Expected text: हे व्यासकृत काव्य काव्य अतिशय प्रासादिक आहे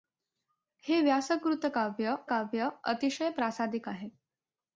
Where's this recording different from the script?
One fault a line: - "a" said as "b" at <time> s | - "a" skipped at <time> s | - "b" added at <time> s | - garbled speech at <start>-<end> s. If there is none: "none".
none